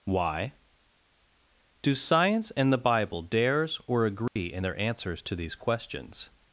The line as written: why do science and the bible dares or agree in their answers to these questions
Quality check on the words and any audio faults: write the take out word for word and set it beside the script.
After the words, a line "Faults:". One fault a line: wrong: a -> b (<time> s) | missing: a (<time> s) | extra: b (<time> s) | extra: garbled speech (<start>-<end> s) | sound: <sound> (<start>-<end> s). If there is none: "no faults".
why do science and the bible dares or agree in their answers to these questions
Faults:
sound: dropout (4.3-4.4 s)